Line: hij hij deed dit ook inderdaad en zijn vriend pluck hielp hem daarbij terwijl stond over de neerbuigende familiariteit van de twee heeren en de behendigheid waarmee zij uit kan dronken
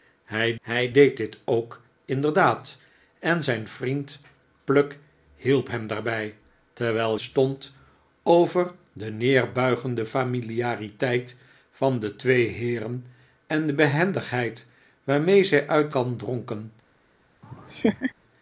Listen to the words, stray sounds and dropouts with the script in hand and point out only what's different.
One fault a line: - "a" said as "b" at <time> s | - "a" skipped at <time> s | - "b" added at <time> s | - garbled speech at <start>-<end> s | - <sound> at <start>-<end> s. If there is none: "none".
- laugh at 17.4-18.1 s